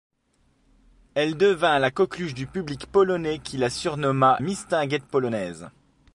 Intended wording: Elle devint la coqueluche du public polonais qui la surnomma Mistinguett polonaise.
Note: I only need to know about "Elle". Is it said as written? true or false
true